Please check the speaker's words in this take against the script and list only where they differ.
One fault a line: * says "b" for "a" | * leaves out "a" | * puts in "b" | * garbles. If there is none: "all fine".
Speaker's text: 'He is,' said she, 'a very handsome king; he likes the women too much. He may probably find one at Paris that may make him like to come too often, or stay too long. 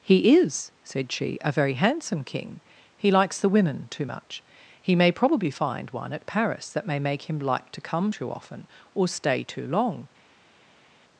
all fine